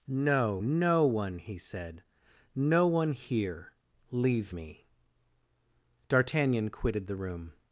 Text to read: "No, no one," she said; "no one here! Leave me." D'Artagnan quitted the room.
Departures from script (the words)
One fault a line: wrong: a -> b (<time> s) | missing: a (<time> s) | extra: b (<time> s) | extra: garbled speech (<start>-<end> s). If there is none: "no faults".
wrong: she -> he (1.4 s)